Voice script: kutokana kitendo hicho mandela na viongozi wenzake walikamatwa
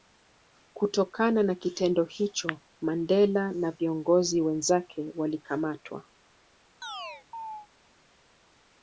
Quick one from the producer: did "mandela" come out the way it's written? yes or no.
yes